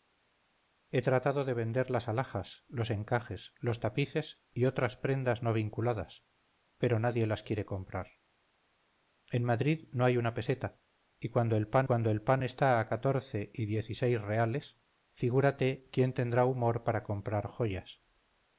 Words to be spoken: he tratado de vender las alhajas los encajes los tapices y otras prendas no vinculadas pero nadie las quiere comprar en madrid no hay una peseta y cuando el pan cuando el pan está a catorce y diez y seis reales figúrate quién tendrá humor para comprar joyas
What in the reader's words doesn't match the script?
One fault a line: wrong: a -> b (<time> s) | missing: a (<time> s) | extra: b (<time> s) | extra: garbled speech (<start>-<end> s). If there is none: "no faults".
no faults